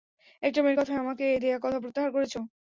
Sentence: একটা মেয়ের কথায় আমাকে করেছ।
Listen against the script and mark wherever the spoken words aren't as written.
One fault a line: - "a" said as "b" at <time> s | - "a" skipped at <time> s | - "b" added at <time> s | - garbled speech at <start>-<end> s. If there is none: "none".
- "দেয়া কথা প্রত্যাহার" added at 1.4 s